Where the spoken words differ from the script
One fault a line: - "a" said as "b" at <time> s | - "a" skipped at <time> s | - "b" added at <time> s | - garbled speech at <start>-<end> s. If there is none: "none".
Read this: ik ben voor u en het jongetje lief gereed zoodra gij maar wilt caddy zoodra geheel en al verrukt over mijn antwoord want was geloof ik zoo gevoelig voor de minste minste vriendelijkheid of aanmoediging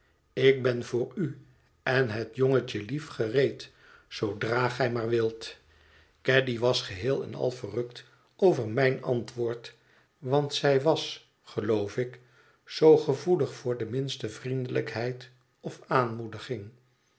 - "zoodra" said as "was" at 6.6 s
- "zij" added at 10.5 s
- "minste" skipped at 14.3 s